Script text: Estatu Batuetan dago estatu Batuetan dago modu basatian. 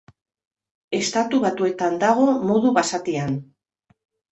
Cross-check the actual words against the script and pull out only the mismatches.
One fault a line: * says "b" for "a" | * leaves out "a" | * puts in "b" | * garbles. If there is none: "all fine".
* leaves out "estatu Batuetan dago"